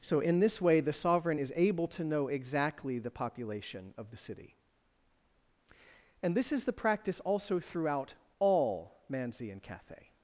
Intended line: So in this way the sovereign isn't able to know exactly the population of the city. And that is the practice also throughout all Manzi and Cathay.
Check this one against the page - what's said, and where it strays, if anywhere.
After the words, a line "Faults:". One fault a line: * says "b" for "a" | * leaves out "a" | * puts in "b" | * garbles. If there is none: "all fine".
So in this way the sovereign is able to know exactly the population of the city. And this is the practice also throughout all Manzi and Cathay.
Faults:
* says "is" for "isn't"
* says "this" for "that"